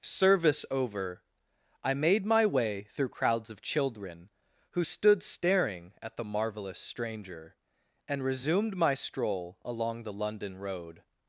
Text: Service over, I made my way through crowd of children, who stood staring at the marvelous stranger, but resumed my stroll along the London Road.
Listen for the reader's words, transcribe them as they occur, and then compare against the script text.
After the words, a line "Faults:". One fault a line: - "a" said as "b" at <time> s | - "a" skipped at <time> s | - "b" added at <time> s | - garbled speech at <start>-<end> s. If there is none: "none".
Service over, I made my way through crowds of children, who stood staring at the marvelous stranger, and resumed my stroll along the London Road.
Faults:
- "crowd" said as "crowds" at 3.1 s
- "but" said as "and" at 8.1 s